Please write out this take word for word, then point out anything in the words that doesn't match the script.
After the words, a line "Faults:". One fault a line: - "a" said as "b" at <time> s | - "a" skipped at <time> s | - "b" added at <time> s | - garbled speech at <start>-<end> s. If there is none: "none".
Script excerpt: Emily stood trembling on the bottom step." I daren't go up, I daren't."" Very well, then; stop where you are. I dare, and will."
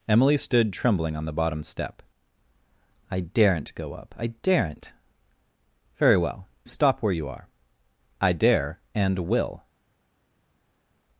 Emily stood trembling on the bottom step." I daren't go up, I daren't."" Very well; stop where you are. I dare, and will."
Faults:
- "then" skipped at 6.5 s